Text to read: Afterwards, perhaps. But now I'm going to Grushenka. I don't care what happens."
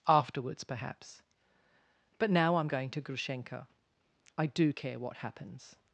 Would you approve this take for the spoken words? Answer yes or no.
no